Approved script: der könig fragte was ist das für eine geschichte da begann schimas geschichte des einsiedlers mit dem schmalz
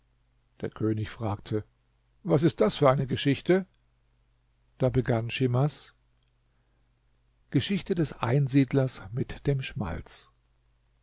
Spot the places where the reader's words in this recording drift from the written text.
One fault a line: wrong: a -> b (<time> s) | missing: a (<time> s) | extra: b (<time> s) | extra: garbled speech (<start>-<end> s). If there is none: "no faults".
no faults